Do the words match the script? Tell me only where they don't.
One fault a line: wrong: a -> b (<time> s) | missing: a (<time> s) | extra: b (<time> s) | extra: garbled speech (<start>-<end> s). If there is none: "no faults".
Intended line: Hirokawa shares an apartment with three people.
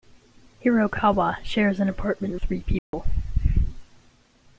missing: with (2.4 s)